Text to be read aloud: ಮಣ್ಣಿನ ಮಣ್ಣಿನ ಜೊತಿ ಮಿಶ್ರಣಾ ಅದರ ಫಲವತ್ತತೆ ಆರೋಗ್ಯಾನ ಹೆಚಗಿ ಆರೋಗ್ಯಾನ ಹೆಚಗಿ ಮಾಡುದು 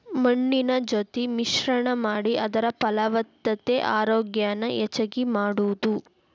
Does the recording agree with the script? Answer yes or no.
no